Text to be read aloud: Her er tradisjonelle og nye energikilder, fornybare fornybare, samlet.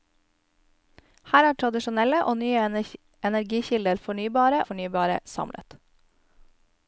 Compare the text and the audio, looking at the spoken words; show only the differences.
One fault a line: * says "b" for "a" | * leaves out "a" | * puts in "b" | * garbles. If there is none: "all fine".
all fine